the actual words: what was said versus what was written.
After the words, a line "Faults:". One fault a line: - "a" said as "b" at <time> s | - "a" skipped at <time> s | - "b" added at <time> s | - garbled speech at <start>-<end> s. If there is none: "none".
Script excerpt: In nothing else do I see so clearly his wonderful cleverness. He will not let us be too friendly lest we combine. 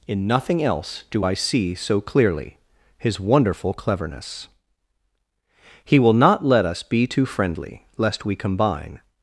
In nothing else do I see so clearly his wonderful cleverness. He will not let us be too friendly lest we combine.
Faults:
none